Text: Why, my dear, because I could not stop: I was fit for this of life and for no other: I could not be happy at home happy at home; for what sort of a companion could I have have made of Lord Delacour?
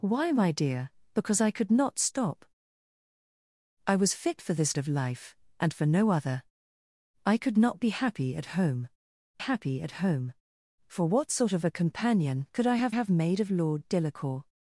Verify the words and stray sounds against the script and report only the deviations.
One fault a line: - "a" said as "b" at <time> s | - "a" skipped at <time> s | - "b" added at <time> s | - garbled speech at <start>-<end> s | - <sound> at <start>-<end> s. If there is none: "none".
none